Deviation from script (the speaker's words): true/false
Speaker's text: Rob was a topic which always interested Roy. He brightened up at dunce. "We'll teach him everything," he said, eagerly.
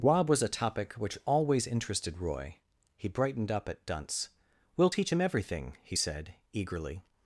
false